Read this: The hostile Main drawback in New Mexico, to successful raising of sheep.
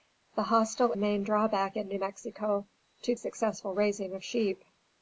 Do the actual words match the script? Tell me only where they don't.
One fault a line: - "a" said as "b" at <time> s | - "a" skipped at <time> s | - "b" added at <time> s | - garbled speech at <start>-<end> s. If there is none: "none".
none